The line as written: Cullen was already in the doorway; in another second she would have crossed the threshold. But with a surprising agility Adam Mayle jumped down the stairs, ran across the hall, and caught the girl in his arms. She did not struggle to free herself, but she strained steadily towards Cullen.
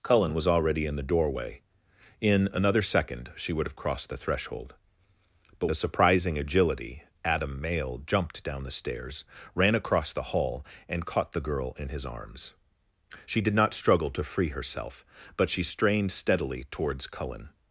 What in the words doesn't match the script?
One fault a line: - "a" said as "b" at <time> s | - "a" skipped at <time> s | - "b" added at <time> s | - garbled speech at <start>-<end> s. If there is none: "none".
- "with" skipped at 5.7 s